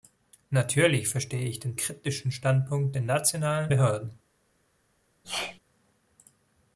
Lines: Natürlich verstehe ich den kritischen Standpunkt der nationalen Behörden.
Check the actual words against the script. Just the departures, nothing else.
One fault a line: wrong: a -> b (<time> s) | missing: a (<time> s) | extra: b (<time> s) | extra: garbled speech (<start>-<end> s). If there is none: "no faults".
no faults